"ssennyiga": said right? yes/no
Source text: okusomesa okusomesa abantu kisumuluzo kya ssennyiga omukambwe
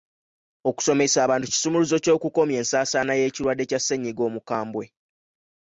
yes